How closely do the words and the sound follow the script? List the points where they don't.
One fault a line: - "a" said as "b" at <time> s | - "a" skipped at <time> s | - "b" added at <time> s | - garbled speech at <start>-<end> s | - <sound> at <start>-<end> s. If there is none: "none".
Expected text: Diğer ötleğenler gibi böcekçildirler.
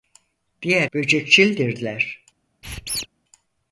- "ötleğenler gibi" skipped at 0.9 s
- squeak at 2.6-3.1 s